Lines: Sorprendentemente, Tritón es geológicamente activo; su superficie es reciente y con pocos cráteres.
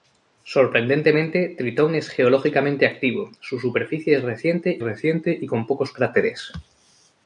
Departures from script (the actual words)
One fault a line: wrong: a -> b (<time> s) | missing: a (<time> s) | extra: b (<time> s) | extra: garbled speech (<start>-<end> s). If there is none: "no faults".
extra: reciente (4.8 s)